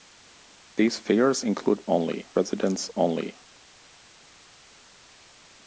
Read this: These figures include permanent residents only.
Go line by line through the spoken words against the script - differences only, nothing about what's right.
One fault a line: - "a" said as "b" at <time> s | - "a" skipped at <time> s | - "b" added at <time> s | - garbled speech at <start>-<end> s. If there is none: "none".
- "permanent" said as "only" at 1.9 s